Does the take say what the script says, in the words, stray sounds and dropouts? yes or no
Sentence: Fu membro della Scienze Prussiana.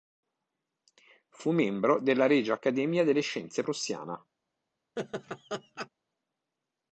no